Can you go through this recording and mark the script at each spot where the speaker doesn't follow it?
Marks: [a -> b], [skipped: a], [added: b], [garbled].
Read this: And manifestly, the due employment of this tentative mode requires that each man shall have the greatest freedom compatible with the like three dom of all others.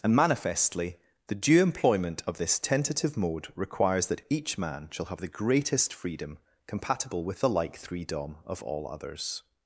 And manifestly, the due employment of this tentative mode requires that each man shall have the greatest freedom compatible with the like three dom of all others.